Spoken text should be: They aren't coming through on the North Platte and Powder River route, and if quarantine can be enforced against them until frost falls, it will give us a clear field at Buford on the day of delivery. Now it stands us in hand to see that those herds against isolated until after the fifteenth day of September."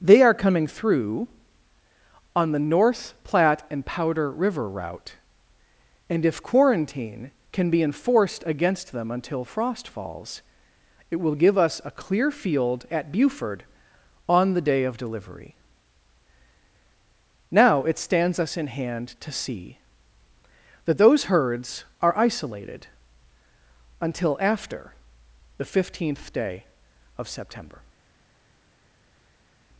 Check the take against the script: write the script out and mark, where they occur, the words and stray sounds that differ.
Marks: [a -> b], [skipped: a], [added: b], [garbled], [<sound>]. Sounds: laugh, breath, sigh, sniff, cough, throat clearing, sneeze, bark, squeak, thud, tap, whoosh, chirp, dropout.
They [aren't -> are] coming through on the North Platte and Powder River route, and if quarantine can be enforced against them until frost falls, it will give us a clear field at Buford on the day of delivery. Now it stands us in hand to see that those herds [against -> are] isolated until after the fifteenth day of September."